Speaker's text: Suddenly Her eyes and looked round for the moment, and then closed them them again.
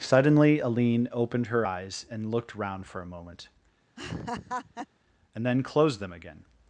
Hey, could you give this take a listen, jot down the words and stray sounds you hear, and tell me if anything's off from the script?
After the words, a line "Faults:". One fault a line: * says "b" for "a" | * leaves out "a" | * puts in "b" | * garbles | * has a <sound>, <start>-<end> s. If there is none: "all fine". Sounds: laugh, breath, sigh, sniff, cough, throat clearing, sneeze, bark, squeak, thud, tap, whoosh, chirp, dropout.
Suddenly Aline opened her eyes and looked round for a moment, and then closed them again.
Faults:
* puts in "Aline opened"
* says "a" for "the"
* has a laugh, 4.0-4.9 s
* leaves out "them"